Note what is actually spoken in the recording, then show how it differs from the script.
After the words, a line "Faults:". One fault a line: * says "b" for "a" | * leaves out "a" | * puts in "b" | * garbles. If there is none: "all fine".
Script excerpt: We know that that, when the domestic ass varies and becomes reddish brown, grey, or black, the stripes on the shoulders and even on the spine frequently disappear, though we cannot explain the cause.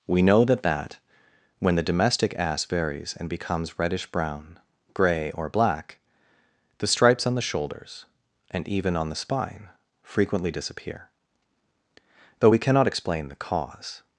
We know that that, when the domestic ass varies and becomes reddish brown, grey, or black, the stripes on the shoulders and even on the spine frequently disappear, though we cannot explain the cause.
Faults:
all fine